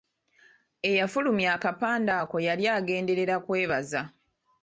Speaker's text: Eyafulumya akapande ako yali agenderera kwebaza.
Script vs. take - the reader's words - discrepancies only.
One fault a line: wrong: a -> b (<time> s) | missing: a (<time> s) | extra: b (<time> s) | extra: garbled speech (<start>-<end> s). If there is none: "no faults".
no faults